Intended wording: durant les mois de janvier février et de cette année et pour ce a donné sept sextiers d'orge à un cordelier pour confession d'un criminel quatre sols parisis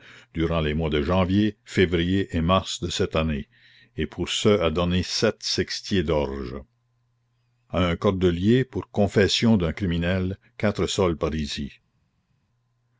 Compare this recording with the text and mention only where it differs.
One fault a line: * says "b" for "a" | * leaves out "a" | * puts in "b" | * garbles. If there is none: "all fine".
* puts in "mars"